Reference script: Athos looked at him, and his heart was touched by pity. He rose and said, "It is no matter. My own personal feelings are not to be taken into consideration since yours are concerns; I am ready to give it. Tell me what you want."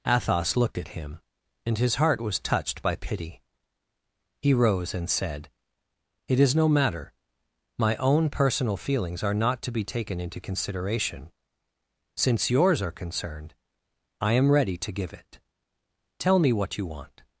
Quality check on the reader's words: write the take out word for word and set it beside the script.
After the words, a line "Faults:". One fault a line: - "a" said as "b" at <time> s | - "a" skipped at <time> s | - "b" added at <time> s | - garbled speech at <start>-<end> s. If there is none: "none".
Athos looked at him, and his heart was touched by pity. He rose and said, "It is no matter. My own personal feelings are not to be taken into consideration since yours are concerned; I am ready to give it. Tell me what you want."
Faults:
- "concerns" said as "concerned" at 12.9 s